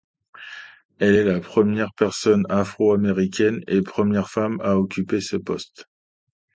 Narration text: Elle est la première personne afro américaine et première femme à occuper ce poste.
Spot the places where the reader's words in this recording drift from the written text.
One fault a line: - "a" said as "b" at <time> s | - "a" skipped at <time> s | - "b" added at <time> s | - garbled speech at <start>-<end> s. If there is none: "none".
none